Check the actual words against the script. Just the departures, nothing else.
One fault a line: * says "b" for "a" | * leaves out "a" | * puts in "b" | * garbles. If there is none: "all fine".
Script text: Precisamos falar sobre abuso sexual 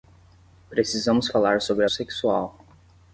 * leaves out "abuso"